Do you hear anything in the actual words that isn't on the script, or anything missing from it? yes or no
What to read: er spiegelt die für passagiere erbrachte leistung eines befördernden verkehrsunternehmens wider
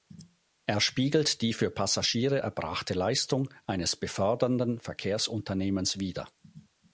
no